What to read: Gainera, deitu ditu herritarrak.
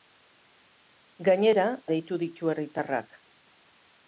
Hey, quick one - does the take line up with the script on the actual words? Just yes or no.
yes